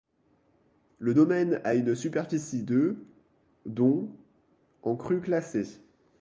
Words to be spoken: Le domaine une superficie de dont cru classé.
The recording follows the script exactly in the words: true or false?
false